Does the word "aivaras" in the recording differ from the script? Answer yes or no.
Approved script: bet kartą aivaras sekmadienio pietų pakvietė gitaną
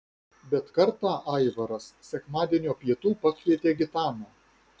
no